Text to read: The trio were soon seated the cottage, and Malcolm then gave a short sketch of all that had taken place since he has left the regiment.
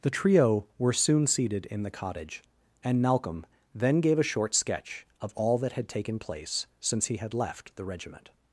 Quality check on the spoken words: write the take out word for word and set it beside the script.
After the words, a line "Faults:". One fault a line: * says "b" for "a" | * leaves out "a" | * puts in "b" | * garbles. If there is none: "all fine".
The trio were soon seated in the cottage, and Malcolm then gave a short sketch of all that had taken place since he had left the regiment.
Faults:
* puts in "in"
* says "had" for "has"